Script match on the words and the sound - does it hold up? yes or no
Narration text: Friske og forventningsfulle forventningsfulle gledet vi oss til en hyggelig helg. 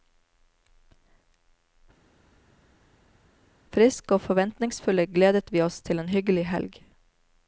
no